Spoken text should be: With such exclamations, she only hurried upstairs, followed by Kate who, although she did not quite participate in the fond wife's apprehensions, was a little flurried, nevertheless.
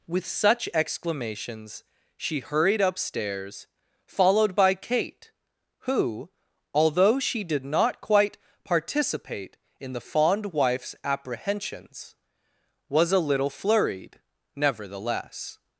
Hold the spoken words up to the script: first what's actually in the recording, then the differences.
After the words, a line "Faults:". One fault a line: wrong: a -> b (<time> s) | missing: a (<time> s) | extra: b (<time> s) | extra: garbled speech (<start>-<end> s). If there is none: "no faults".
With such exclamations, she hurried upstairs, followed by Kate who, although she did not quite participate in the fond wife's apprehensions, was a little flurried, nevertheless.
Faults:
missing: only (2.4 s)